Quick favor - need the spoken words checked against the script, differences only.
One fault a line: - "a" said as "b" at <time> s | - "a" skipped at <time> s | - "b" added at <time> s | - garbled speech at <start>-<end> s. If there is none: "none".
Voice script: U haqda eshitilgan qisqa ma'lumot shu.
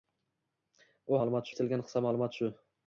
- "haqda" said as "ma'lumot" at 1.2 s